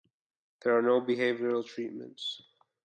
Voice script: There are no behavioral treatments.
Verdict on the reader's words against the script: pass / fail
pass